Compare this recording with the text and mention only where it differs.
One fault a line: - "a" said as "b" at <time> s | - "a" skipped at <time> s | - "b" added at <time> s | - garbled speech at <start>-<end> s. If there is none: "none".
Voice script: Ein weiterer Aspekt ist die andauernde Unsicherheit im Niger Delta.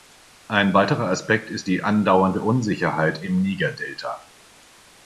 none